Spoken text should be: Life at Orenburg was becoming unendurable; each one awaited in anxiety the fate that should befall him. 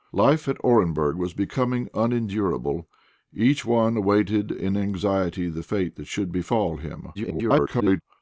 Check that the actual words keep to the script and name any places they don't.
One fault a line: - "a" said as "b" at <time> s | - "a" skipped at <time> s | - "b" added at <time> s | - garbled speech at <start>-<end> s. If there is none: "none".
- garbled speech at 7.1-8.0 s